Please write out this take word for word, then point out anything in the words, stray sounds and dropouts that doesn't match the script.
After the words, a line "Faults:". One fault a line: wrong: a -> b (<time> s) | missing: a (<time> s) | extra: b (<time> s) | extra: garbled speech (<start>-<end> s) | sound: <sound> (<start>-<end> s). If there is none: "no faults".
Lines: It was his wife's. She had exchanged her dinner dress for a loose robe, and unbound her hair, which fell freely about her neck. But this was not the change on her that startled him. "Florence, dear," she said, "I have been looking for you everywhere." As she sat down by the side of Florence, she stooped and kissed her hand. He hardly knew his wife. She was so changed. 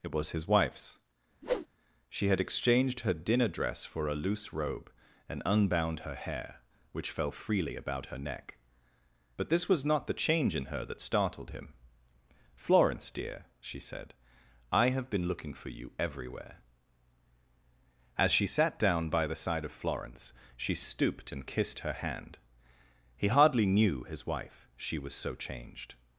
It was his wife's. She had exchanged her dinner dress for a loose robe, and unbound her hair, which fell freely about her neck. But this was not the change in her that startled him. "Florence, dear," she said, "I have been looking for you everywhere." As she sat down by the side of Florence, she stooped and kissed her hand. He hardly knew his wife. She was so changed.
Faults:
sound: whoosh (1.4-1.7 s)
wrong: on -> in (10.5 s)